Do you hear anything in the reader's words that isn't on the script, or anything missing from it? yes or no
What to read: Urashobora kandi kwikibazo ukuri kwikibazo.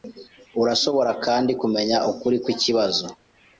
yes